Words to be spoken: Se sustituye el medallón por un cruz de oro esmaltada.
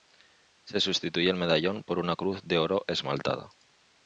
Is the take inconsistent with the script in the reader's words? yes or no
yes